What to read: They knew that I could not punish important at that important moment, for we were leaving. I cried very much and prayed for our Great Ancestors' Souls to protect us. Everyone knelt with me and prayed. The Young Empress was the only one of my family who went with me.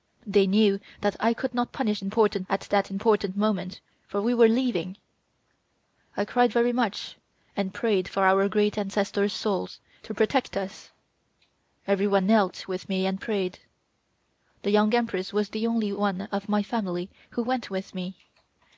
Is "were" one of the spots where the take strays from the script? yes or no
no